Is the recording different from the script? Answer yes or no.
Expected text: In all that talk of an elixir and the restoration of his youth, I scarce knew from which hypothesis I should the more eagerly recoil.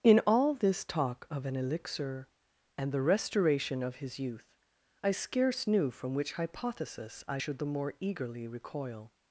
yes